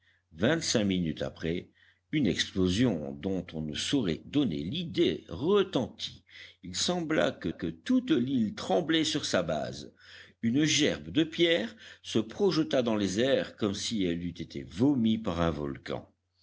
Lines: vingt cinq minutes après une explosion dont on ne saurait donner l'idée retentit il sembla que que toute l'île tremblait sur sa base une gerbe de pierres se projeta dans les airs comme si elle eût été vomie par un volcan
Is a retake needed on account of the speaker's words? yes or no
no